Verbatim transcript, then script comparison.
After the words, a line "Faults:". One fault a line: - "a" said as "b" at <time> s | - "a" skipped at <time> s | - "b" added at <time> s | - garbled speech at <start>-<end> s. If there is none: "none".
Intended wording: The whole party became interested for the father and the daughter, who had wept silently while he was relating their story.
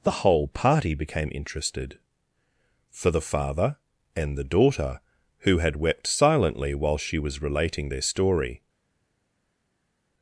The whole party became interested for the father and the daughter, who had wept silently while she was relating their story.
Faults:
- "he" said as "she" at 7.0 s